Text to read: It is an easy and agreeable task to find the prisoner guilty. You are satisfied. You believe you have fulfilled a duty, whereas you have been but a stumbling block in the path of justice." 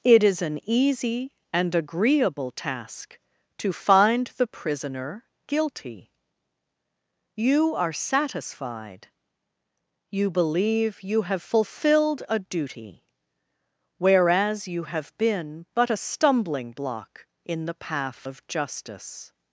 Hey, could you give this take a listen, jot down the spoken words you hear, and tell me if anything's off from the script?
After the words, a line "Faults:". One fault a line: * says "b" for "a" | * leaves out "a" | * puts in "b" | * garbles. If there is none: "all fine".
It is an easy and agreeable task to find the prisoner guilty. You are satisfied. You believe you have fulfilled a duty, whereas you have been but a stumbling block in the path of justice."
Faults:
all fine